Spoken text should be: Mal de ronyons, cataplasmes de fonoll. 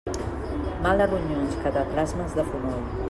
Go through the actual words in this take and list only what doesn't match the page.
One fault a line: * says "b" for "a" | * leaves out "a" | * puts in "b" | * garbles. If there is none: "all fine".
all fine